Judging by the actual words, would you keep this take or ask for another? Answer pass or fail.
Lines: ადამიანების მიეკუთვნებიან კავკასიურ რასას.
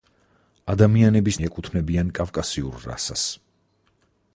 pass